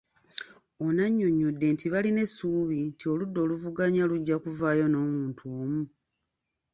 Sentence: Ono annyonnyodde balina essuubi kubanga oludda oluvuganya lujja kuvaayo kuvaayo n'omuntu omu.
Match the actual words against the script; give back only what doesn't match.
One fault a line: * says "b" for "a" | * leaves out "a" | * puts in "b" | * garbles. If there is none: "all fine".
* puts in "nti"
* says "nti" for "kubanga"
* leaves out "kuvaayo"